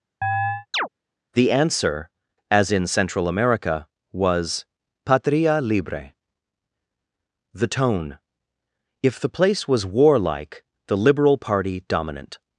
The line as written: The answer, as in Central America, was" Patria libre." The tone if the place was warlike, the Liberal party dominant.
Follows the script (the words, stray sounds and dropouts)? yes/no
no